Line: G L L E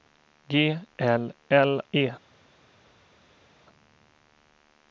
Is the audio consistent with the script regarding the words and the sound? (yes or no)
yes